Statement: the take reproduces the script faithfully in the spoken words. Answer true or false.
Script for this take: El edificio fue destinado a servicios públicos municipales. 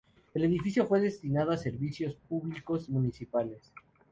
true